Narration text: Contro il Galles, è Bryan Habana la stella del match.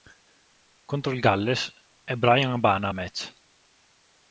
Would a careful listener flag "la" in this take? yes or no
yes